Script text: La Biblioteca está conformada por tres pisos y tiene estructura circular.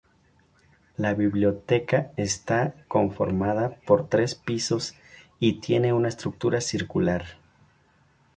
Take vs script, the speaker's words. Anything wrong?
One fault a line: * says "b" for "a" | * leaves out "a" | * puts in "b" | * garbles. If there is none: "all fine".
* puts in "una"